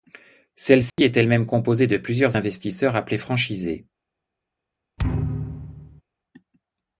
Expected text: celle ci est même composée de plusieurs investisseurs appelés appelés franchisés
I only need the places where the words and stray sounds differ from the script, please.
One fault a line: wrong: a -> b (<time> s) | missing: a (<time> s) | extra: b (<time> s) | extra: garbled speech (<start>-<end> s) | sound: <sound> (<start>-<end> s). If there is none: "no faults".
sound: dropout (0.9-1.0 s)
extra: elle (1.2 s)
missing: appelés (3.2 s)
sound: thud (5.0-6.0 s)